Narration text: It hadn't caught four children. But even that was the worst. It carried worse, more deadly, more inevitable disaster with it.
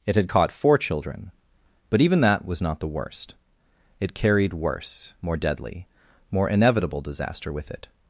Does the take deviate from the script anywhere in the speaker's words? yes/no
yes